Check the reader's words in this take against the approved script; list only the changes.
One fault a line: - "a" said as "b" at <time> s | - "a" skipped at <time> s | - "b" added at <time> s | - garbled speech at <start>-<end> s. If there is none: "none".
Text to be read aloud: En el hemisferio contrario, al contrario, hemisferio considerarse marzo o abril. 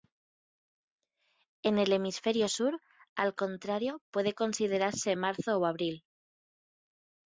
- "contrario" said as "sur" at 2.5 s
- "hemisferio" said as "puede" at 4.1 s